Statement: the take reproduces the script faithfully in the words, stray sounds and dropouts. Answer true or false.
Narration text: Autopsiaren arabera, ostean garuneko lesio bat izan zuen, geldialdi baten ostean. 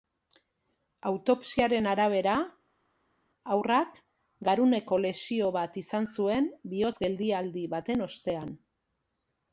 false